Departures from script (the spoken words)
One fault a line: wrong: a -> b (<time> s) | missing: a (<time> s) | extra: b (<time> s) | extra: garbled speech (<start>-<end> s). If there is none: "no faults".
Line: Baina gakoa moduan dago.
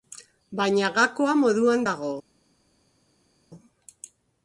no faults